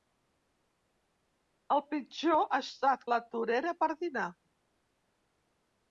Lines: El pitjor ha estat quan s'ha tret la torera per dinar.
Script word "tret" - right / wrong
wrong